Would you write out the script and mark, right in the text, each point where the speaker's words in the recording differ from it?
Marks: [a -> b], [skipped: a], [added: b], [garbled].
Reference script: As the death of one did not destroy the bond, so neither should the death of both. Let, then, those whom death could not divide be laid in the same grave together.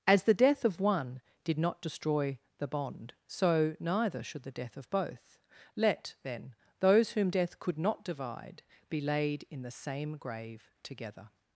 As the death of one did not destroy the bond, so neither should the death of both. Let, then, those whom death could not divide be laid in the same grave together.